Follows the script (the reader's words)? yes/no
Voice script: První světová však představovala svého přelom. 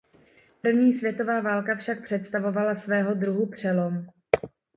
no